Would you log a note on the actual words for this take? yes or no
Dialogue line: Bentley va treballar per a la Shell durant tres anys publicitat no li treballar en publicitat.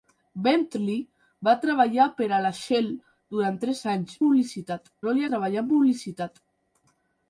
no